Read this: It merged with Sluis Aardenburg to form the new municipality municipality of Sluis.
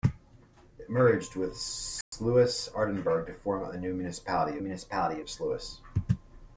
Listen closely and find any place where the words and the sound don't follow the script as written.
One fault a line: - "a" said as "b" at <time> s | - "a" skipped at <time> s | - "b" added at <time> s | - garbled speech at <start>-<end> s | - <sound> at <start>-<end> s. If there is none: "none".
- dropout at 2.0-2.1 s